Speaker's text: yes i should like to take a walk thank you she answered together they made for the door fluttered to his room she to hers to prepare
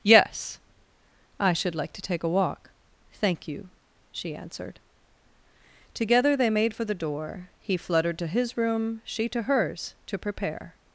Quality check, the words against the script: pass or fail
fail